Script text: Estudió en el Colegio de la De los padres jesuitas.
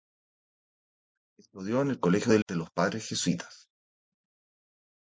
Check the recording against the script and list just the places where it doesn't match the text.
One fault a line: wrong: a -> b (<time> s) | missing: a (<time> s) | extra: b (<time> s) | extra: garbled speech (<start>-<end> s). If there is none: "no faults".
no faults